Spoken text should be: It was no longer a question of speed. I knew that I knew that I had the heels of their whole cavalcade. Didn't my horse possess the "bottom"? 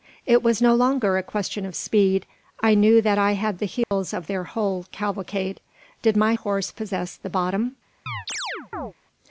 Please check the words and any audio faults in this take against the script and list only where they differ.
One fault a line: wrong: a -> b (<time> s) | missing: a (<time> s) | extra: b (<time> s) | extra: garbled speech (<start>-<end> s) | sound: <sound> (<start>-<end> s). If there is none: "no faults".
missing: knew that I (3.3 s)
sound: dropout (3.8-3.9 s)
wrong: Didn't -> Did (6.0 s)
sound: chirp (8.1-8.9 s)